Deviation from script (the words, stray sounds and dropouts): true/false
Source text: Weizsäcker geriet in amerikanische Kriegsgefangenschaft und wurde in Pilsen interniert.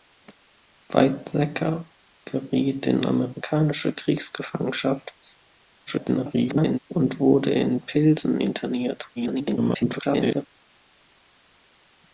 true